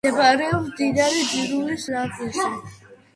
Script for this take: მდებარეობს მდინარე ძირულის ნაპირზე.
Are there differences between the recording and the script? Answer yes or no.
no